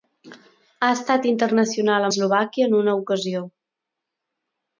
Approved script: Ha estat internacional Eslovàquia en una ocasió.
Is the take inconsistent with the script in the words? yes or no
no